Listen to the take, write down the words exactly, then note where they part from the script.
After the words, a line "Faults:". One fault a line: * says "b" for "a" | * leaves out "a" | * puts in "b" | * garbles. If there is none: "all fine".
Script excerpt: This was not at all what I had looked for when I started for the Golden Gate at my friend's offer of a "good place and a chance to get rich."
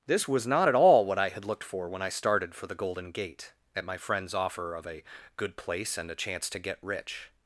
This was not at all what I had looked for when I started for the Golden Gate at my friend's offer of a "good place and a chance to get rich."
Faults:
all fine